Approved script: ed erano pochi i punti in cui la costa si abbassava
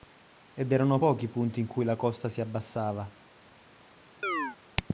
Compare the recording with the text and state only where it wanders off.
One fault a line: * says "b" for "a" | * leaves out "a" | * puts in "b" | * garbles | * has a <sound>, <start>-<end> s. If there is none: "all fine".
* has a chirp, 4.2-4.6 s